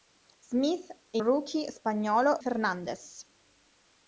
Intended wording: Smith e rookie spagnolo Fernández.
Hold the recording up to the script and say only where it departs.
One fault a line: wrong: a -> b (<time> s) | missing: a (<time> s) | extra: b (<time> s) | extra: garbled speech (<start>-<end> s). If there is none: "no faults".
no faults